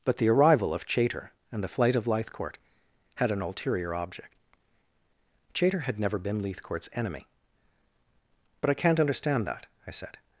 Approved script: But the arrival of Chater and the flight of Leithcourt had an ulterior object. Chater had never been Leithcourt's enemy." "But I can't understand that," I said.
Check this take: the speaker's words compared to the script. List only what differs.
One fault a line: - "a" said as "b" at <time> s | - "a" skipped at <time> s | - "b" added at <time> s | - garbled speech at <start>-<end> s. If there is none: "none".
none